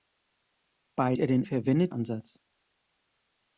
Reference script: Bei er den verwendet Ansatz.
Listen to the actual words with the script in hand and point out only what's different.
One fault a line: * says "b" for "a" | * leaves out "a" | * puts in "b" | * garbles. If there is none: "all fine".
all fine